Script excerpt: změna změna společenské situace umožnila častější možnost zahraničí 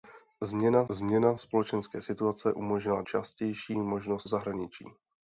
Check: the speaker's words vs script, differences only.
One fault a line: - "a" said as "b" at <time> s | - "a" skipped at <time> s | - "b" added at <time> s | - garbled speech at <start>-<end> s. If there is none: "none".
none